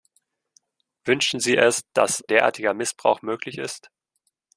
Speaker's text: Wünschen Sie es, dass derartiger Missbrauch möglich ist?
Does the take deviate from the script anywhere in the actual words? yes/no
no